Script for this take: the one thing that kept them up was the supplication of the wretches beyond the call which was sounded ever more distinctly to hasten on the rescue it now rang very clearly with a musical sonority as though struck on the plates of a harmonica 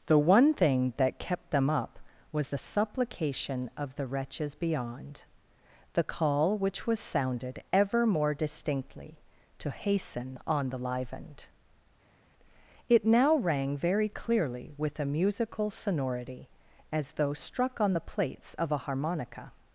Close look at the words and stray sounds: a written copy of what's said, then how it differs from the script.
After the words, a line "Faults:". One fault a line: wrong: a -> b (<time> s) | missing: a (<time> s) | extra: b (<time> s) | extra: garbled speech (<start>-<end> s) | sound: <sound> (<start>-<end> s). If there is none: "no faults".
the one thing that kept them up was the supplication of the wretches beyond the call which was sounded ever more distinctly to hasten on the livened it now rang very clearly with a musical sonority as though struck on the plates of a harmonica
Faults:
wrong: rescue -> livened (10.8 s)